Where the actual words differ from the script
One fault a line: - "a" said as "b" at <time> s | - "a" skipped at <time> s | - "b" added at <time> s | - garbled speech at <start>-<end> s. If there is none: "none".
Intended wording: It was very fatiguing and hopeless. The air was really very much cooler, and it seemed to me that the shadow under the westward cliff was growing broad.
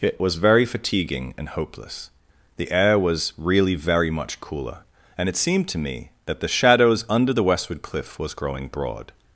- "shadow" said as "shadows" at 6.5 s